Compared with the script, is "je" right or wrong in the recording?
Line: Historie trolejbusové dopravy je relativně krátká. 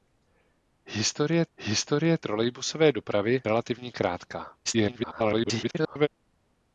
wrong